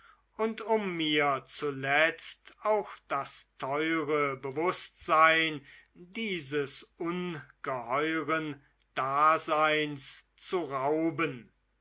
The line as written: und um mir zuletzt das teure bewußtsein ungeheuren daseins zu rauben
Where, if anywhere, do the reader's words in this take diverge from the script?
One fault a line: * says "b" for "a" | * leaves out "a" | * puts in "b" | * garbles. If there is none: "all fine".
* puts in "auch"
* puts in "dieses"